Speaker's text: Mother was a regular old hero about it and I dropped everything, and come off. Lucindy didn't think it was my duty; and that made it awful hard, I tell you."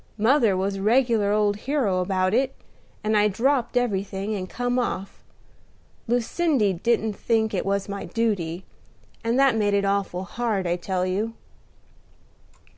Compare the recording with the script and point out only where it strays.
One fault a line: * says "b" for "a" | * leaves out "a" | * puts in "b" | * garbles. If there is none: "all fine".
all fine